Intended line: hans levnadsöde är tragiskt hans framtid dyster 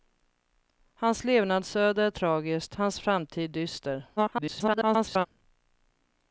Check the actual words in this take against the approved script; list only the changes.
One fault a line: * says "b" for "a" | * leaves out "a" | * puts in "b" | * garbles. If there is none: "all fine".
* garbles